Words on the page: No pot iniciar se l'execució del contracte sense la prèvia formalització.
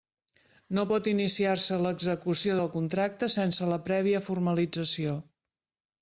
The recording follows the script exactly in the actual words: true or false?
true